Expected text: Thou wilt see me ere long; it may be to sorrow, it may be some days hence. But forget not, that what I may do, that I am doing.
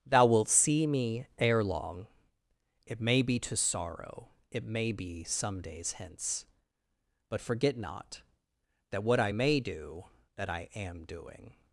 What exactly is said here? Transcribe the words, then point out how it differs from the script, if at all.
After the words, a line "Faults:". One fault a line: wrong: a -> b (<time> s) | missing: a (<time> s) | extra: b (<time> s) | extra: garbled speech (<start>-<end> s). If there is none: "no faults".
Thou wilt see me ere long; it may be to sorrow, it may be some days hence. But forget not, that what I may do, that I am doing.
Faults:
no faults